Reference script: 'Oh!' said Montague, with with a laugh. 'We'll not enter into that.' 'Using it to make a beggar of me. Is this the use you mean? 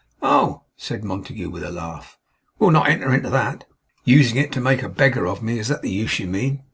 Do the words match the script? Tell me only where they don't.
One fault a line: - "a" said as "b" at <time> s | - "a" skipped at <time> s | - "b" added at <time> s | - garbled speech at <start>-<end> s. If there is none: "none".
- "with" skipped at 1.6 s
- "this" said as "that" at 5.7 s